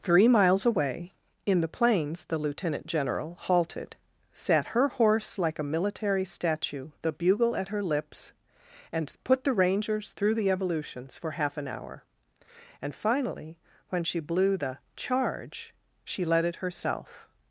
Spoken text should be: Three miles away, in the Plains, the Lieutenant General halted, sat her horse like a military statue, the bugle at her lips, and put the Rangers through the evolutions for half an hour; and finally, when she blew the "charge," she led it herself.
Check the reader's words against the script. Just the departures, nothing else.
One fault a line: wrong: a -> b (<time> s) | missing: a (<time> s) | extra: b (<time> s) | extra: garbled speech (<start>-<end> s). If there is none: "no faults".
no faults